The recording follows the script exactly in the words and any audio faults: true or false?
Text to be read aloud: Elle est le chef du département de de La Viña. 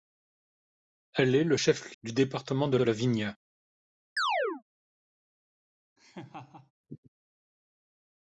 false